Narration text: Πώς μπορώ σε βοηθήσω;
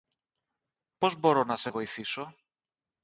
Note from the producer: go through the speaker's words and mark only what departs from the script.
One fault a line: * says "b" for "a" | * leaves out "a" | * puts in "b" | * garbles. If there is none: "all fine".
* puts in "να"